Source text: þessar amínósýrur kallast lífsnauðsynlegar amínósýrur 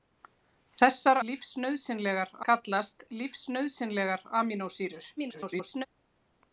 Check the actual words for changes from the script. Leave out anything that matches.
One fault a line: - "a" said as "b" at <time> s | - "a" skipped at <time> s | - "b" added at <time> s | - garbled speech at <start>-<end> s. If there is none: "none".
- "amínósýrur" said as "lífsnauðsynlegar" at 1.3 s
- garbled speech at 5.2-5.9 s